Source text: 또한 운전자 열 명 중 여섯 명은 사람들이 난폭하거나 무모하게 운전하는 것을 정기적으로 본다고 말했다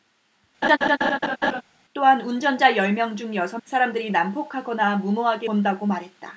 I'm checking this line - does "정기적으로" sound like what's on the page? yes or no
no